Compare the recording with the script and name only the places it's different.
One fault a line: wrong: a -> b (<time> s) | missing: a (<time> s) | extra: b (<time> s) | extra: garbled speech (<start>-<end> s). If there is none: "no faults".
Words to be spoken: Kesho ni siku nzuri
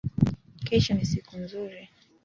no faults